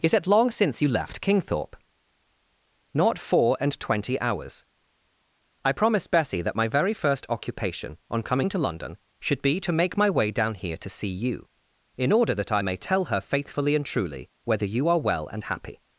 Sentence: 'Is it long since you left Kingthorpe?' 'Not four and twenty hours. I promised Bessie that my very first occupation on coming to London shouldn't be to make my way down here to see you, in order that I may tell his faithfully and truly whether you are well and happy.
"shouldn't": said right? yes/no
no